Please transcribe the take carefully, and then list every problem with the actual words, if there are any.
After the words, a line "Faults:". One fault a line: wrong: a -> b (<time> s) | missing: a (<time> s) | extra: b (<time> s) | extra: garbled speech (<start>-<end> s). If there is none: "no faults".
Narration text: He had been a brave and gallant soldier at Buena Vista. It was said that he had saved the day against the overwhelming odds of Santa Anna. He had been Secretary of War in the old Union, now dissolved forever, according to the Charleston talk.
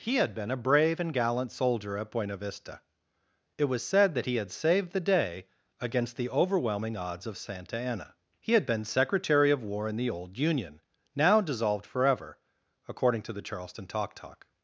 He had been a brave and gallant soldier at Buena Vista. It was said that he had saved the day against the overwhelming odds of Santa Anna. He had been Secretary of War in the old Union, now dissolved forever, according to the Charleston talk talk.
Faults:
extra: talk (14.1 s)